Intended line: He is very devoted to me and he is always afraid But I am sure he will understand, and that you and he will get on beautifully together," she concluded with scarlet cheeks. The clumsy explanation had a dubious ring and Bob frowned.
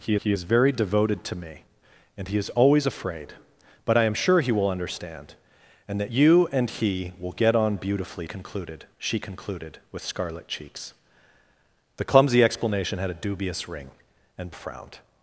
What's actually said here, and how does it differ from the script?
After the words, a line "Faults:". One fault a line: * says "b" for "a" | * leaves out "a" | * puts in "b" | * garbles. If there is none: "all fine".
He he is very devoted to me and he is always afraid But I am sure he will understand, and that you and he will get on beautifully concluded," she concluded with scarlet cheeks. The clumsy explanation had a dubious ring and Frowned.
Faults:
* puts in "he"
* says "concluded" for "together"
* leaves out "Bob"